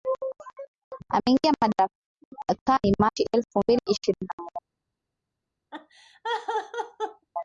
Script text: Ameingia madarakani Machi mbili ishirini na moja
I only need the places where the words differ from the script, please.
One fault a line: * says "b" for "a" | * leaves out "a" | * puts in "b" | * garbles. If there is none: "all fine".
* puts in "elfu"